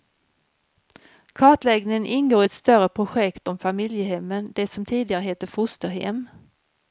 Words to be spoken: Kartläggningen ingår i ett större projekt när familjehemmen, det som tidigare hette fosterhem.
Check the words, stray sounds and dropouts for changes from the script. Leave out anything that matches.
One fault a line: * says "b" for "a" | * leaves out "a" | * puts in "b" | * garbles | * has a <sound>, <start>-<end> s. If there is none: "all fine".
* says "om" for "när"